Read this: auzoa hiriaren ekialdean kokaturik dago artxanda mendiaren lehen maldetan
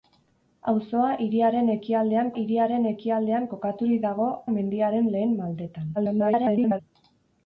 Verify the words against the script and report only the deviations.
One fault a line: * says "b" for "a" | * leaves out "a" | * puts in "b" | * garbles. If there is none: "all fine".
* puts in "hiriaren ekialdean"
* leaves out "artxanda"
* garbles